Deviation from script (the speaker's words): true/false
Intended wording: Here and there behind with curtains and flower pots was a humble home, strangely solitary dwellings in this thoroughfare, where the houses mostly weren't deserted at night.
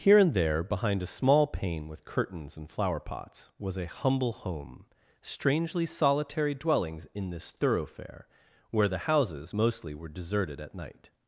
true